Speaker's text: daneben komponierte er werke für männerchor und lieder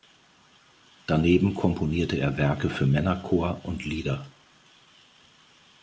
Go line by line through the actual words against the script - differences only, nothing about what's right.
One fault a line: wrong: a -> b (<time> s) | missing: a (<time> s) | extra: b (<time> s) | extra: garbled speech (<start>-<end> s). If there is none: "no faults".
no faults